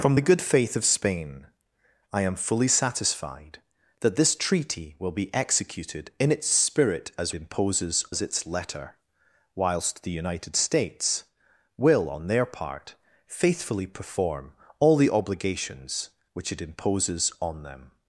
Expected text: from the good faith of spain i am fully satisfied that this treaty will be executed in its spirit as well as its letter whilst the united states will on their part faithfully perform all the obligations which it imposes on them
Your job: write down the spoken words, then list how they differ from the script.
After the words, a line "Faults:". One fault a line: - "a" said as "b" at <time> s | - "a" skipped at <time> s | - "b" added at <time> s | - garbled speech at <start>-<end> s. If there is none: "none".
from the good faith of spain i am fully satisfied that this treaty will be executed in its spirit as imposes as its letter whilst the united states will on their part faithfully perform all the obligations which it imposes on them
Faults:
- "well" said as "imposes" at 7.3 s